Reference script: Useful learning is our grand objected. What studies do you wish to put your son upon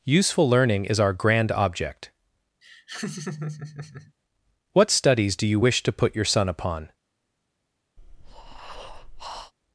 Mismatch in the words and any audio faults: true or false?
true